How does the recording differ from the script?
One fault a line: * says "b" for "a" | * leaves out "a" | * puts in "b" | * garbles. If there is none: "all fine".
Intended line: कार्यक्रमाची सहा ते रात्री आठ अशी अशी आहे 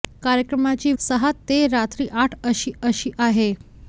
all fine